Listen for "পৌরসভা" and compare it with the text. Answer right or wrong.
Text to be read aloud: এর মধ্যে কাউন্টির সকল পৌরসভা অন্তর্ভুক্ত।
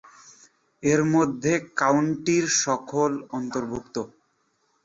wrong